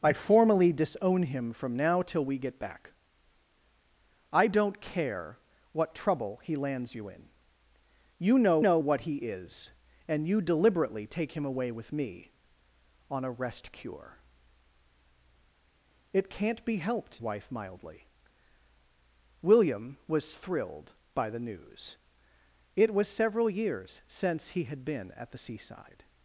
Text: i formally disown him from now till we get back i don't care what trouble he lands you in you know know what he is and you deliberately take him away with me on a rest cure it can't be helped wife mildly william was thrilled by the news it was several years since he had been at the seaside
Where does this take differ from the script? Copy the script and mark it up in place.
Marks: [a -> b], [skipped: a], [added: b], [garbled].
i formally disown him from now till we get back i don't care what trouble he lands you in you know know what he is and you deliberately take him away with me on a rest cure it can't be helped wife mildly william was thrilled by the news it was several years since he had been at the seaside